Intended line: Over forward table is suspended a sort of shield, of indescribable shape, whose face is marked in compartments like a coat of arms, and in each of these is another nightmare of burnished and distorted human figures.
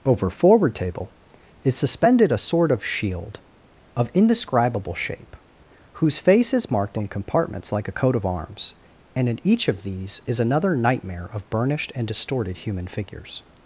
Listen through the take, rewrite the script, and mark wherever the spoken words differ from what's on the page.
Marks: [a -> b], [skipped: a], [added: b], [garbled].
Over forward table is suspended a sort of shield, of indescribable shape, whose face is marked in compartments like a coat of arms, and in each of these is another nightmare of burnished and distorted human figures.